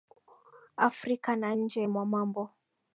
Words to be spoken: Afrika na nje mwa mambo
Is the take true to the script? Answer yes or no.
yes